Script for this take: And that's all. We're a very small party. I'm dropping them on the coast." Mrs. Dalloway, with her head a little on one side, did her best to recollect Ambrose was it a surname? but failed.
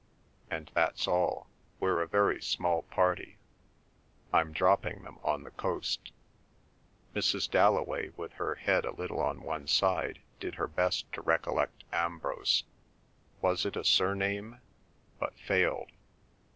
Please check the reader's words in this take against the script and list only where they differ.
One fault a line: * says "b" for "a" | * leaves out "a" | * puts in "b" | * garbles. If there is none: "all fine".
all fine